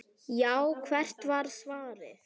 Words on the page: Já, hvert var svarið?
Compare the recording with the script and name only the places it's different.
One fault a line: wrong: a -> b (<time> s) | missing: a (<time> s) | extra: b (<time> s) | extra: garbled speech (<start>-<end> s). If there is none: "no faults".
no faults